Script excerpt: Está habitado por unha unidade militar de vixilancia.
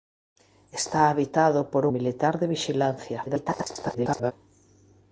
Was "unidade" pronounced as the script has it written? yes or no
no